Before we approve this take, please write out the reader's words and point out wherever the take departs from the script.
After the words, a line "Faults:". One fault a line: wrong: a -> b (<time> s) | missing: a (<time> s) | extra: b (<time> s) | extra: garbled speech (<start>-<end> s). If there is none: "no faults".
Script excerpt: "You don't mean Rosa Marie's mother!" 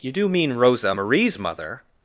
"You do mean Rosa Marie's mother!"
Faults:
wrong: don't -> do (0.1 s)